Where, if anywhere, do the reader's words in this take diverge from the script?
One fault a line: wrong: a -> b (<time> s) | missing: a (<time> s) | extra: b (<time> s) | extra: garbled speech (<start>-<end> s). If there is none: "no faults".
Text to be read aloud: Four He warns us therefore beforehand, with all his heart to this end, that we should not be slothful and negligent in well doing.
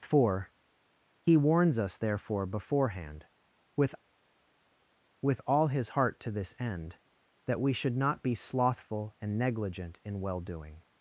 extra: with (5.2 s)